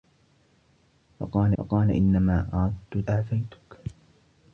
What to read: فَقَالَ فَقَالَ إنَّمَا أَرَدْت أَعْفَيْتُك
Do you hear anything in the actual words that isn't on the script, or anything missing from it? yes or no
no